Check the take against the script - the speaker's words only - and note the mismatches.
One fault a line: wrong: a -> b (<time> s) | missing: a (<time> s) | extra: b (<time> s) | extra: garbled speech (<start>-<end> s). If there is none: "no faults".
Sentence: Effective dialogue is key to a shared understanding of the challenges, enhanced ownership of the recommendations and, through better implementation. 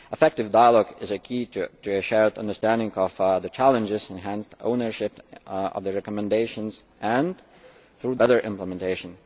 no faults